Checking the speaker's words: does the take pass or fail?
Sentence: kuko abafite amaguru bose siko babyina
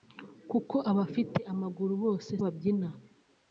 fail